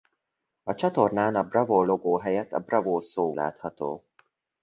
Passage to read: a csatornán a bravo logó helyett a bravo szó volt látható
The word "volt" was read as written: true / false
false